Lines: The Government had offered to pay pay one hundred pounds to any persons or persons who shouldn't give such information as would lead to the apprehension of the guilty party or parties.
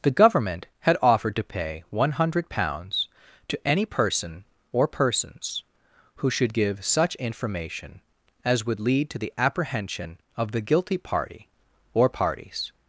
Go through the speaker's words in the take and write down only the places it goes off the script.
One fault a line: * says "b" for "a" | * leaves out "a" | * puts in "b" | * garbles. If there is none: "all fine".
* leaves out "pay"
* says "person" for "persons"
* says "should" for "shouldn't"